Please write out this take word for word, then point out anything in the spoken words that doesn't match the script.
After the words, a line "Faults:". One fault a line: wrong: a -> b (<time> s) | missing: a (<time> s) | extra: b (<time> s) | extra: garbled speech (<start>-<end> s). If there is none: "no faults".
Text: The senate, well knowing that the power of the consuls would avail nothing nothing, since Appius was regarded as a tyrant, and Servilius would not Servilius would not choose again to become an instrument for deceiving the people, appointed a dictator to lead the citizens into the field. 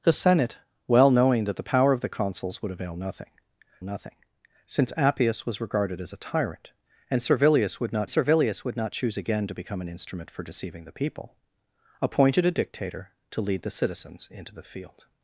The senate, well knowing that the power of the consuls would avail nothing nothing, since Appius was regarded as a tyrant, and Servilius would not Servilius would not choose again to become an instrument for deceiving the people, appointed a dictator to lead the citizens into the field.
Faults:
no faults